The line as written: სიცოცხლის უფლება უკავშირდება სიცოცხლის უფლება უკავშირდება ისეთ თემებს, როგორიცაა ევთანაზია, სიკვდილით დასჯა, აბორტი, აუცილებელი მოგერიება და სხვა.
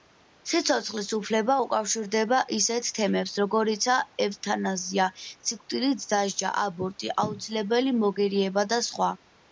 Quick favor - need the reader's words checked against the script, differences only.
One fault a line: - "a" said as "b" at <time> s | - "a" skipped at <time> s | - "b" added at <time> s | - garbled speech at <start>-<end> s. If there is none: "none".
- "სიცოცხლის უფლება უკავშირდება" skipped at 2.4 s